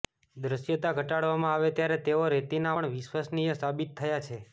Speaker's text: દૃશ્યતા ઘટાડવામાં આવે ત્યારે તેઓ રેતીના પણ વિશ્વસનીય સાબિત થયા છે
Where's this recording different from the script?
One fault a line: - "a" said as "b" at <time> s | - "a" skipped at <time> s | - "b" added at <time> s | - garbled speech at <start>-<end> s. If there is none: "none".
none